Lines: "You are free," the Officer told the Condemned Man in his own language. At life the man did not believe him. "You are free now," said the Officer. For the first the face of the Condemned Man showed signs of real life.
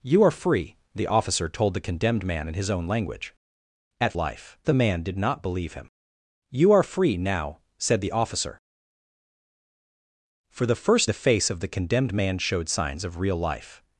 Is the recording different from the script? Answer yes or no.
no